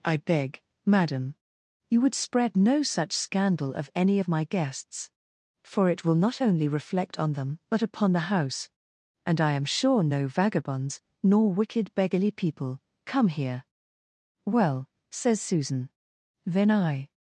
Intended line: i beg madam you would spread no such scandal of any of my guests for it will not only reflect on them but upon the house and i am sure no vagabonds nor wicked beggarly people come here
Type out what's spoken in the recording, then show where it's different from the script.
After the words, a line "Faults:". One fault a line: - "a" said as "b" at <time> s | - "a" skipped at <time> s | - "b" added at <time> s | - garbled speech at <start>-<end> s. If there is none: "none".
i beg madam you would spread no such scandal of any of my guests for it will not only reflect on them but upon the house and i am sure no vagabonds nor wicked beggarly people come here well says susan then i
Faults:
- "well says susan then i" added at 14.5 s